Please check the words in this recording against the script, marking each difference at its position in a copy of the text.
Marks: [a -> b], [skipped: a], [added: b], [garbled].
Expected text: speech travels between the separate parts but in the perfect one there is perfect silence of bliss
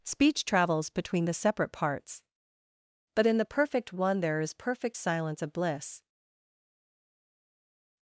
speech travels between the separate parts but in the perfect one there is perfect silence of bliss